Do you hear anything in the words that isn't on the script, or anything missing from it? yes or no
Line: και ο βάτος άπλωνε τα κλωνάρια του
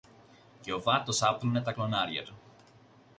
no